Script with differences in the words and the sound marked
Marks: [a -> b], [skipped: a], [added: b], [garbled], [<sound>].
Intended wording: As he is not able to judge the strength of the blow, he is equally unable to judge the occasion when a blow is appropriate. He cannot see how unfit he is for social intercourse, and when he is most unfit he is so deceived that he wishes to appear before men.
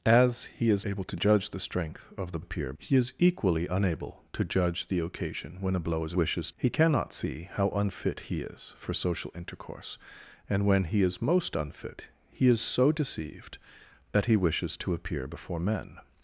As he is [skipped: not] able to judge the strength of the [blow, -> appear] he is equally unable to judge the occasion when a blow is [appropriate. -> wishes] He cannot see how unfit he is for social intercourse, and when he is most unfit he is so deceived that he wishes to appear before men.